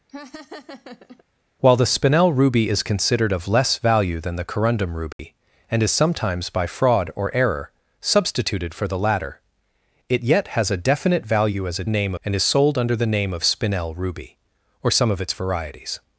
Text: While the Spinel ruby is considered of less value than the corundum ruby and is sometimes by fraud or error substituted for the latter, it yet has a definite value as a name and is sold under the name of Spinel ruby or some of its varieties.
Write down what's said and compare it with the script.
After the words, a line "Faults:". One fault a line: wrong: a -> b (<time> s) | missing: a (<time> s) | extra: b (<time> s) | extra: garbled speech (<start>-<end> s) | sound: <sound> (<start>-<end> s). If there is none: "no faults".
While the Spinel ruby is considered of less value than the corundum ruby and is sometimes by fraud or error substituted for the latter, it yet has a definite value as a name and is sold under the name of Spinel ruby or some of its varieties.
Faults:
sound: laugh (0.1-1.2 s)
sound: dropout (5.1-5.2 s)